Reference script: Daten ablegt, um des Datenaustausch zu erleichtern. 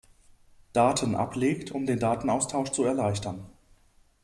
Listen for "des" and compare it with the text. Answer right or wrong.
wrong